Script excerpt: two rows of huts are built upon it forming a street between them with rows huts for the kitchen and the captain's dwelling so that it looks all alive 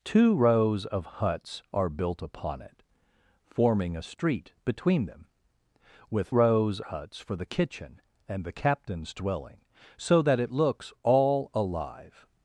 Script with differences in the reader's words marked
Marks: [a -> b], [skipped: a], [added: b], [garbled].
two rows of huts are built upon it forming a street between them with rows huts for the kitchen and the captain's dwelling so that it looks all alive